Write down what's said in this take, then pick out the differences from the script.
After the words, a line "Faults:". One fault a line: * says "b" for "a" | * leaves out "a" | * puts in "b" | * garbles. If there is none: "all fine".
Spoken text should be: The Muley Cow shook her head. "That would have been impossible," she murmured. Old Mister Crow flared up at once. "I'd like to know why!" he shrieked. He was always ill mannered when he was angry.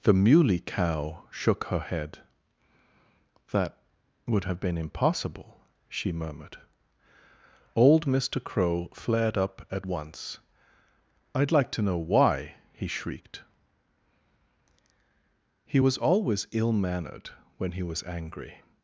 The Muley Cow shook her head. "That would have been impossible," she murmured. Old Mister Crow flared up at once. "I'd like to know why!" he shrieked. He was always ill mannered when he was angry.
Faults:
all fine